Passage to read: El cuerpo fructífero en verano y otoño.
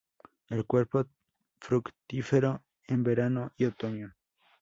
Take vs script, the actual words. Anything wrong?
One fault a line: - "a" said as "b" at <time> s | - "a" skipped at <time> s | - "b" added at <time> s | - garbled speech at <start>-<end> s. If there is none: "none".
none